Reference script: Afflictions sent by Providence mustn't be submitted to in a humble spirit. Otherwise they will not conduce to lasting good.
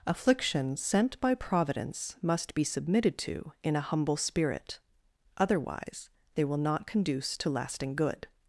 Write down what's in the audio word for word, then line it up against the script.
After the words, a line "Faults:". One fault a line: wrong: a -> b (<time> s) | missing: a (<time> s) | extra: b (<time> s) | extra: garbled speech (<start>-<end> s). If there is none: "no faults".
Afflictions sent by Providence must be submitted to in a humble spirit. Otherwise they will not conduce to lasting good.
Faults:
wrong: mustn't -> must (2.2 s)